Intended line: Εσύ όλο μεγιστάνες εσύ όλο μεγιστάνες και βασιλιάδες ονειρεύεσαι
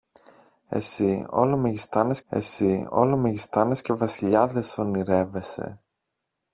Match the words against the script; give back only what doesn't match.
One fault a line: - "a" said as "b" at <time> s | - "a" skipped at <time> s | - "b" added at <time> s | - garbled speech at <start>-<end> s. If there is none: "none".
none